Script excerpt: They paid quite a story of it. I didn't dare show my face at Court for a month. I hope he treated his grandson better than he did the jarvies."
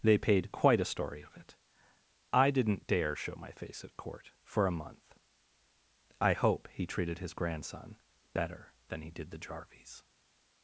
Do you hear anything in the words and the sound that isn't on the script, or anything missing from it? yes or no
no